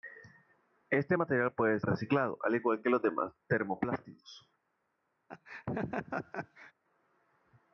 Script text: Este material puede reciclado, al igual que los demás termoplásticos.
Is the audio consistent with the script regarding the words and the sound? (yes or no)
no